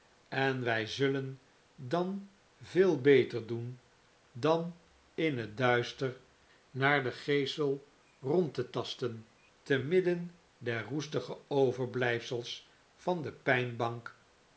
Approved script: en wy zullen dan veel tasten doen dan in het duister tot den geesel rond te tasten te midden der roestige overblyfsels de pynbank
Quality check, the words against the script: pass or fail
fail